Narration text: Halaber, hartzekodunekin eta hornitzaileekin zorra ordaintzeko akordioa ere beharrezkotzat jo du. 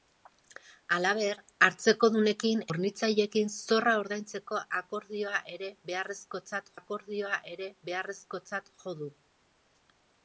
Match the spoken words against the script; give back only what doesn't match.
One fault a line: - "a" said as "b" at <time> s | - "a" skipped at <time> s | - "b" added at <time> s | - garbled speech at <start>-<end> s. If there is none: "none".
- "eta" skipped at 2.6 s
- "akordioa ere beharrezkotzat" added at 6.8 s